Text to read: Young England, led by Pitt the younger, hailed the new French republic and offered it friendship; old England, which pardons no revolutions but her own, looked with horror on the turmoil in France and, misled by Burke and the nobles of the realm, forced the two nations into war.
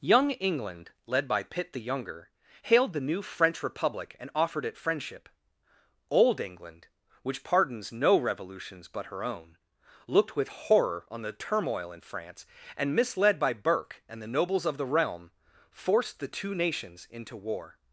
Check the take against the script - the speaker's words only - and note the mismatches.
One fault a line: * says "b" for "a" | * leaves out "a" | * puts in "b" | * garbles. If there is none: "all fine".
all fine